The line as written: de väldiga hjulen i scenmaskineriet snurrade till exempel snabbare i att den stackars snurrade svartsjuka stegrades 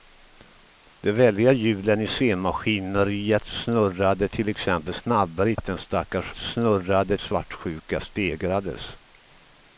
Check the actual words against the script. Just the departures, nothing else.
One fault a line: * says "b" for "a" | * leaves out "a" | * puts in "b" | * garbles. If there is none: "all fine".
all fine